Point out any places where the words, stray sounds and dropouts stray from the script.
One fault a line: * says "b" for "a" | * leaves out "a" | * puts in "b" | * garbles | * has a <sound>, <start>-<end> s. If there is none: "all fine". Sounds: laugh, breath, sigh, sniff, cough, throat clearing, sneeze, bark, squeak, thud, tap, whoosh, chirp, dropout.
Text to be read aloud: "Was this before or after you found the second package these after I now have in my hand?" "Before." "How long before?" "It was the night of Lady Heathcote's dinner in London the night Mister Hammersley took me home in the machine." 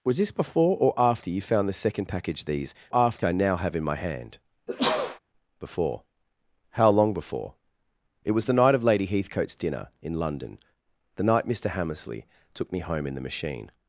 * has a sneeze, 4.7-5.2 s